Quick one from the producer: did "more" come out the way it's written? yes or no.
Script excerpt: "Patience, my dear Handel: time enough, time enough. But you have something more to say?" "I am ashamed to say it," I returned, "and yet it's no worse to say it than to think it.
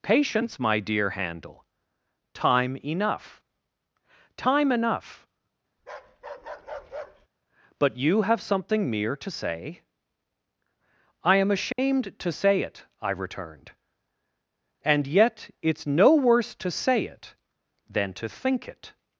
no